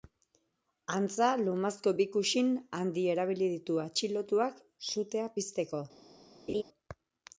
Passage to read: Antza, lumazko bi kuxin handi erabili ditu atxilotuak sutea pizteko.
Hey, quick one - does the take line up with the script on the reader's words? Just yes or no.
yes